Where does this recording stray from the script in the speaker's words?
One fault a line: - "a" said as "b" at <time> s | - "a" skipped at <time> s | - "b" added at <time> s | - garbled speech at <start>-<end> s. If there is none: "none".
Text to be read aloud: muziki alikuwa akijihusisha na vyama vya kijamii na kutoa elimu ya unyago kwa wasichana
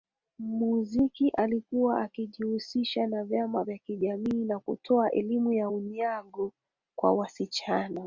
none